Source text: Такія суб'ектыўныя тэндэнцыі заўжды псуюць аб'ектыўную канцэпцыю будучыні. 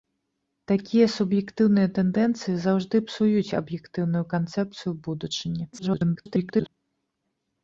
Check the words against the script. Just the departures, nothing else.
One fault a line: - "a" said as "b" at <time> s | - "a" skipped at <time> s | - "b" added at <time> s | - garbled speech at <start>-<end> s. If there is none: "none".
- garbled speech at 5.7-6.7 s